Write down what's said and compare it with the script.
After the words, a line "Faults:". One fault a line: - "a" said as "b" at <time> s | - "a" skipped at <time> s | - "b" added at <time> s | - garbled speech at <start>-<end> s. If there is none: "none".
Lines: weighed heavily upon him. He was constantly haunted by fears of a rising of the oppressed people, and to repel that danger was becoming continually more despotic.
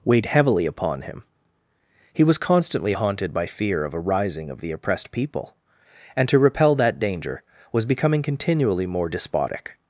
weighed heavily upon him. He was constantly haunted by fear of a rising of the oppressed people, and to repel that danger was becoming continually more despotic.
Faults:
- "fears" said as "fear" at 3.4 s